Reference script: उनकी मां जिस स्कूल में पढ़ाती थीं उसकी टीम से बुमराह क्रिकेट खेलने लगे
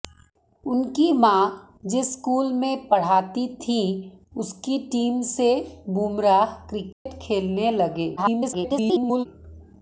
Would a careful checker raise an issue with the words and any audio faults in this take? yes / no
yes